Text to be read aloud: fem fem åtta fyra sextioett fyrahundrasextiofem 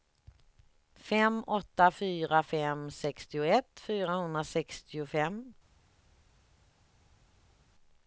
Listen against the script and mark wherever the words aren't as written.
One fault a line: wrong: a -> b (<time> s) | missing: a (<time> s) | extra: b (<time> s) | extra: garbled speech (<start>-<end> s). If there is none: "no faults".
missing: fem (1.4 s)
extra: fem (2.4 s)